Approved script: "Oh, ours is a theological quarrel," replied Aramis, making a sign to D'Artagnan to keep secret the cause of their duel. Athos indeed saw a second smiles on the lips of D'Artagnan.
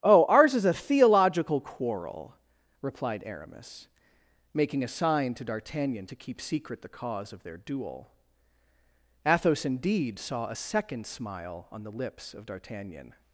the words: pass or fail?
fail